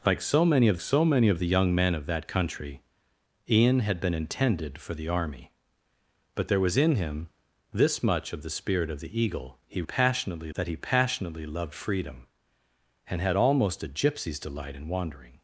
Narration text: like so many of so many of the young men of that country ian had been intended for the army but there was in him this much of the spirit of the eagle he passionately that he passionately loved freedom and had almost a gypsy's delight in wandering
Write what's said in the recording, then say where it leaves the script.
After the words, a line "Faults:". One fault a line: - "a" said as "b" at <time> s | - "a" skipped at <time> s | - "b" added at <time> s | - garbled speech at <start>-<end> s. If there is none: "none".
like so many of so many of the young men of that country ian had been intended for the army but there was in him this much of the spirit of the eagle he passionately that he passionately loved freedom and had almost a gypsy's delight in wandering
Faults:
none